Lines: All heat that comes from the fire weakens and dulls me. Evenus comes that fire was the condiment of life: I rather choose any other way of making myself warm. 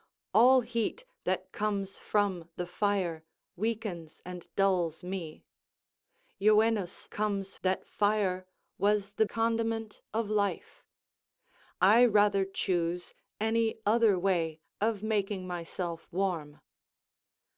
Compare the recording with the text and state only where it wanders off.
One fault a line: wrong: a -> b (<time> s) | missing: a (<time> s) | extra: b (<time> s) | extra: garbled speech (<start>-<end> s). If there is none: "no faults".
no faults